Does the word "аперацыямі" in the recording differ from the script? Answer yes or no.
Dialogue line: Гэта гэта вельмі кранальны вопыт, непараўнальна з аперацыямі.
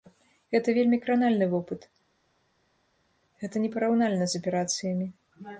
no